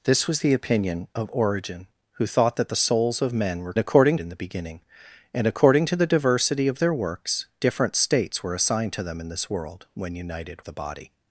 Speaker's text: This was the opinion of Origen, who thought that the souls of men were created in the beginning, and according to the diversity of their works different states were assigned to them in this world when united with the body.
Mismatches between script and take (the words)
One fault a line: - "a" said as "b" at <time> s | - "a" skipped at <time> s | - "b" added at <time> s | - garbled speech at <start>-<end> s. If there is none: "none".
- "created" said as "according" at 3.8 s
- "with" skipped at 10.6 s